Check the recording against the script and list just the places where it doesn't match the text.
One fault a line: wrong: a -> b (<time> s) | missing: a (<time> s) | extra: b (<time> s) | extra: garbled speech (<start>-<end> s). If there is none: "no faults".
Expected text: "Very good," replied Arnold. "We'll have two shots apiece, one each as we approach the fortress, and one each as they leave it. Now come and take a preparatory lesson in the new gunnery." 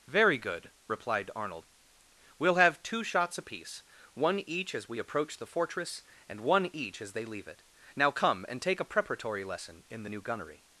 no faults